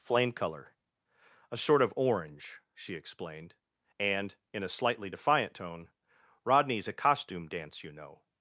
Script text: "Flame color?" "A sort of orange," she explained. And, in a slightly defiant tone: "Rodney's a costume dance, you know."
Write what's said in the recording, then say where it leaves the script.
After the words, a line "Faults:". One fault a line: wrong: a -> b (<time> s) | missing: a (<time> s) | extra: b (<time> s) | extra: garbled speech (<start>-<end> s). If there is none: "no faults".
"Flame color?" "A sort of orange," she explained. And, in a slightly defiant tone: "Rodney's a costume dance, you know."
Faults:
no faults